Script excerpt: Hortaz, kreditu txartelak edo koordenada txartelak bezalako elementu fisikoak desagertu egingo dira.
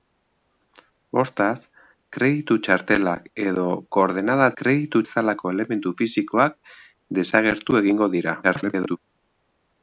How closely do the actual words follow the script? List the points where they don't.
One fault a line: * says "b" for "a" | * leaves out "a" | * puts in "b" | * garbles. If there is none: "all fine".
* says "kreditu" for "txartelak"
* garbles